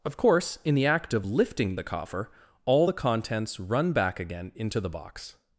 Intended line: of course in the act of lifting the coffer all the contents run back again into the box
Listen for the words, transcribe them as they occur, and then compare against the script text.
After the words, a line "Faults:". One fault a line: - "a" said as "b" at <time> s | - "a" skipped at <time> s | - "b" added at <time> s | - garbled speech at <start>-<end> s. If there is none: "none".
of course in the act of lifting the coffer all the contents run back again into the box
Faults:
none